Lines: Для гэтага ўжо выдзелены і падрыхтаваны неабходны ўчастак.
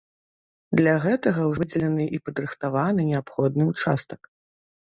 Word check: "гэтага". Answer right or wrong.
right